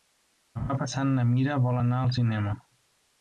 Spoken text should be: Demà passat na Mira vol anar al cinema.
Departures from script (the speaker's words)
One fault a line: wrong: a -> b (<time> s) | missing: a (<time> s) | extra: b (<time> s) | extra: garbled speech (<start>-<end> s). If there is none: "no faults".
no faults